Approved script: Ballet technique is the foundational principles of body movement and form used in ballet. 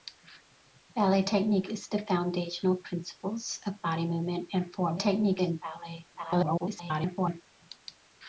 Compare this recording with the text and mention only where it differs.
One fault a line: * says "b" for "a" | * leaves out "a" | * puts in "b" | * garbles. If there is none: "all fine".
* says "technique" for "used"
* garbles